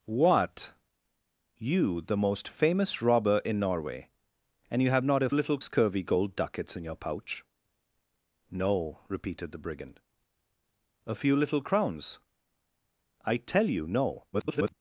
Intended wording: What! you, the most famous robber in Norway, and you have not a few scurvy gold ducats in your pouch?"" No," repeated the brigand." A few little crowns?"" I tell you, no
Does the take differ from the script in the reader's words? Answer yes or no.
yes